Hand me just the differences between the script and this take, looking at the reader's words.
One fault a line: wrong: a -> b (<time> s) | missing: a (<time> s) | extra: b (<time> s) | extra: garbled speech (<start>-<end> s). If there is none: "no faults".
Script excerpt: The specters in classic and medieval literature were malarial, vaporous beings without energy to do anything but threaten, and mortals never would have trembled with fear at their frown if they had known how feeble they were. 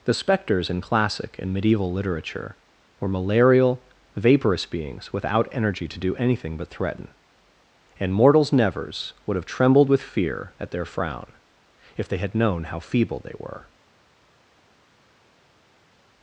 wrong: never -> nevers (8.5 s)